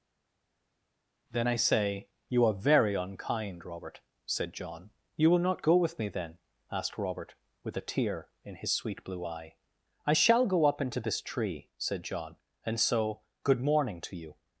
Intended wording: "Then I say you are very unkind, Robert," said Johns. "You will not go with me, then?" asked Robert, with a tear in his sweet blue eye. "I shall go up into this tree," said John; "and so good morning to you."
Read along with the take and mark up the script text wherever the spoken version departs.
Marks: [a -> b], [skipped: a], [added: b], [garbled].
"Then I say you are very unkind, Robert," said [Johns. -> John] "You will not go with me, then?" asked Robert, with a tear in his sweet blue eye. "I shall go up into this tree," said John; "and so good morning to you."